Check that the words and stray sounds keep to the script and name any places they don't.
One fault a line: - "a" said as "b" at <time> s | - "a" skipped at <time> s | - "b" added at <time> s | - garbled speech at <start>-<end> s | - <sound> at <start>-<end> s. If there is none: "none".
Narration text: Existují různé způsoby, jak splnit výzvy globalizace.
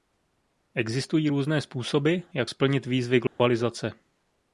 - dropout at 3.3-3.4 s